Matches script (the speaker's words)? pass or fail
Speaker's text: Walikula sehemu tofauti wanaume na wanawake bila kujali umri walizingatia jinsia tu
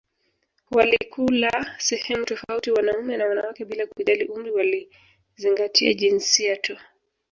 pass